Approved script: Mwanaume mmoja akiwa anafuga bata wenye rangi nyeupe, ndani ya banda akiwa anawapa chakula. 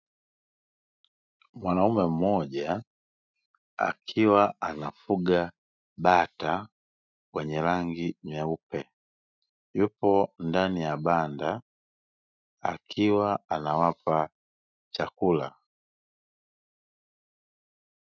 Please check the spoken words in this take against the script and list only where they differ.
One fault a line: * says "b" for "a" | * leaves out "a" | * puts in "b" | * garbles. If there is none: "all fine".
* puts in "yupo"